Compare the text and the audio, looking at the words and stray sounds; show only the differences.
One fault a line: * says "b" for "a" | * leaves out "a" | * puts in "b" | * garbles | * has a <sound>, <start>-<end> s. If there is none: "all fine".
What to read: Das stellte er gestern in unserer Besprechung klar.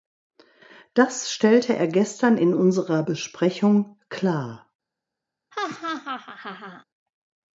* has a laugh, 5.5-6.8 s